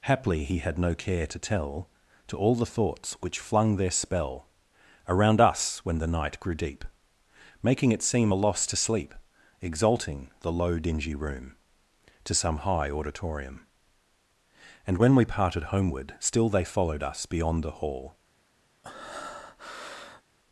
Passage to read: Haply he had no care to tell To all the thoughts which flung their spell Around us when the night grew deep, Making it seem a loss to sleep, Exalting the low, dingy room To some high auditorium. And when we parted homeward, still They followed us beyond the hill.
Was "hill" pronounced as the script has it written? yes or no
no